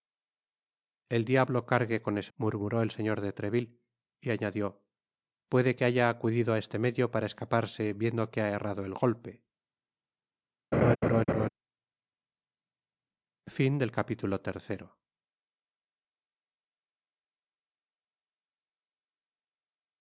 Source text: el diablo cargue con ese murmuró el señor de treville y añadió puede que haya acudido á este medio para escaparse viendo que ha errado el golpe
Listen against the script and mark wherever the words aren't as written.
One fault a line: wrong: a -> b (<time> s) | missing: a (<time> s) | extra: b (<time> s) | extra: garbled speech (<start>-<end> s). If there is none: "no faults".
no faults